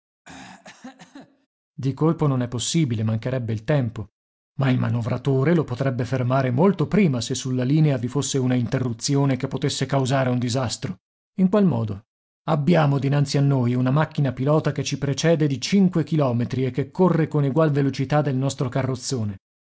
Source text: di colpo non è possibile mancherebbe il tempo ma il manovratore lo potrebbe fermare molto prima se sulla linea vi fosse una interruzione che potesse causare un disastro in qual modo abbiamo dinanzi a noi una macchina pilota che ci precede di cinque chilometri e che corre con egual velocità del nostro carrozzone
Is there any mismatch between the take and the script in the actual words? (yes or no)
no